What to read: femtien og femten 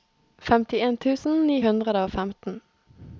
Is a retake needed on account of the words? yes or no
yes